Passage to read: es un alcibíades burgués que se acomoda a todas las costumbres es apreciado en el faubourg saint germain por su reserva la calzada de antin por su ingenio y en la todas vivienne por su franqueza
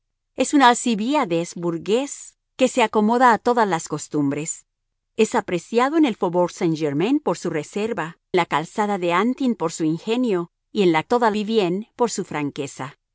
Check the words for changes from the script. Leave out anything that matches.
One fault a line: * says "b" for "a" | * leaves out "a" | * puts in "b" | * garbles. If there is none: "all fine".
all fine